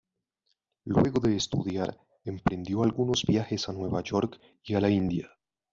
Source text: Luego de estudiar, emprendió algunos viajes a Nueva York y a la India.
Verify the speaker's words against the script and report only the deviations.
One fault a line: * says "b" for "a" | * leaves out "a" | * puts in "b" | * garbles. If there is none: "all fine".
all fine